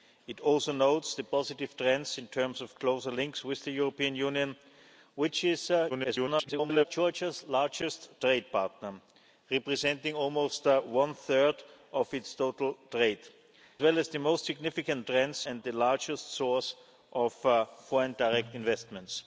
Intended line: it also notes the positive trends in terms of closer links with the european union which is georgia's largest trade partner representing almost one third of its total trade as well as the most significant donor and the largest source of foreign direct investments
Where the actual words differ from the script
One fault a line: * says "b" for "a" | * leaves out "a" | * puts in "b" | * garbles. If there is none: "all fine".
* garbles
* leaves out "as"
* says "trends" for "donor"